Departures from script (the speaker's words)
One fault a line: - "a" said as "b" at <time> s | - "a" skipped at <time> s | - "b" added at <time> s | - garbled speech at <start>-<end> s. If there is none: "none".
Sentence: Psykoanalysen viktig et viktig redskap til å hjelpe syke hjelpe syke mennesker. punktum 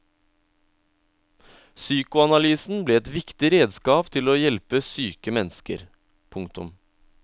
- "viktig" said as "ble" at 2.9 s
- "hjelpe syke" skipped at 5.3 s